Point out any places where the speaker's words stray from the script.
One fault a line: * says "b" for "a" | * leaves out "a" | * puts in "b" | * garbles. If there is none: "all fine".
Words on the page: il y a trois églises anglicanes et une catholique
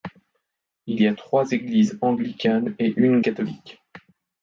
all fine